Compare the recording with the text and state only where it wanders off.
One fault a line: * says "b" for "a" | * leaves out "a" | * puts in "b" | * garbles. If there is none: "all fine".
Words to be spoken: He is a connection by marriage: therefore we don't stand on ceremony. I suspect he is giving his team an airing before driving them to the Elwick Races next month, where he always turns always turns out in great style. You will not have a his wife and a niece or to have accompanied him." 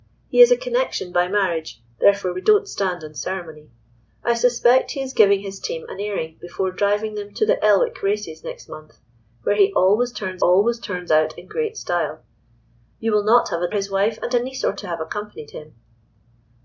all fine